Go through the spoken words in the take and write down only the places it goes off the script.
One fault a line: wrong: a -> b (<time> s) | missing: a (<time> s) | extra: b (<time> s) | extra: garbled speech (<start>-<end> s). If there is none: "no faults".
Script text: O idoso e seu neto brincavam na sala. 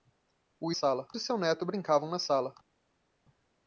wrong: idoso -> sala (0.7 s)